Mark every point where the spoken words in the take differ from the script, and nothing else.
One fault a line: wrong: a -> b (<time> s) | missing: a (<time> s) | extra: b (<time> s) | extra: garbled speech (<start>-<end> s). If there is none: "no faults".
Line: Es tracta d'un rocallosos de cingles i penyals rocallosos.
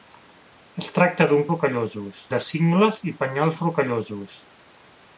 no faults